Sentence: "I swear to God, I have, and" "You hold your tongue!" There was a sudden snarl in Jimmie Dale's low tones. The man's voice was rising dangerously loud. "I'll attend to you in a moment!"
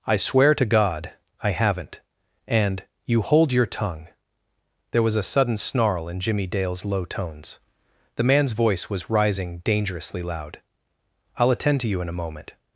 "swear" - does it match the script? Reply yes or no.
yes